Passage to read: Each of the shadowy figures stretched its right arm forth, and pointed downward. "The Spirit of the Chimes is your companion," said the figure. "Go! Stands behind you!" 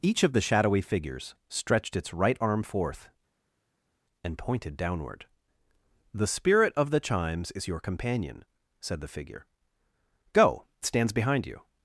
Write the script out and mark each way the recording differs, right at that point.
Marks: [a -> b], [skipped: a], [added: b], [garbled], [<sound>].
Each of the shadowy figures stretched its right arm forth, and pointed downward. "The Spirit of the Chimes is your companion," said the figure. "Go! Stands behind you!"